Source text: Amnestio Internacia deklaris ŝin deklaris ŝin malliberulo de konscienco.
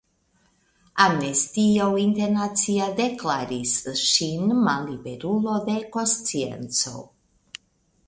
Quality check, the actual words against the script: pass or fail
fail